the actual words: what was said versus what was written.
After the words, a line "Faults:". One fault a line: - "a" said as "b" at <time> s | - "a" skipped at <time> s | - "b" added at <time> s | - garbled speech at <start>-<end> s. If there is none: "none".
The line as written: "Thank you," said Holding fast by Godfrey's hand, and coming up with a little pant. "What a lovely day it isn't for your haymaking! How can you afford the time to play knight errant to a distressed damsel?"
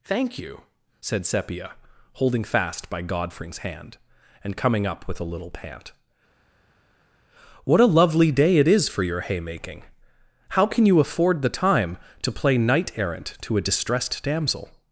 "Thank you," said Sepia, holding fast by Godfrey's hand, and coming up with a little pant. "What a lovely day it is for your haymaking! How can you afford the time to play knight errant to a distressed damsel?"
Faults:
- "Sepia" added at 1.3 s
- "isn't" said as "is" at 8.7 s